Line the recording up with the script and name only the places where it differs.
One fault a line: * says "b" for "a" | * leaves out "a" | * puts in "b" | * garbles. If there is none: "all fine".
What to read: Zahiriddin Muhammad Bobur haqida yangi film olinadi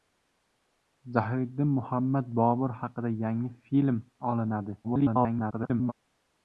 * garbles